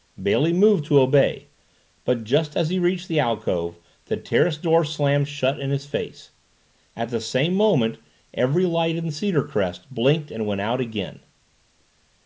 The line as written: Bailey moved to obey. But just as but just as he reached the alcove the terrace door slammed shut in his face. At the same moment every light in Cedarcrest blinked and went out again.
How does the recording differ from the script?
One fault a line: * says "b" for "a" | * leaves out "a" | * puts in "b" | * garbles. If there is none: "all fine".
* leaves out "but just as"